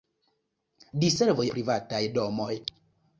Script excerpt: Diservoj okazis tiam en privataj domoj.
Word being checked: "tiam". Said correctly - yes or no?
no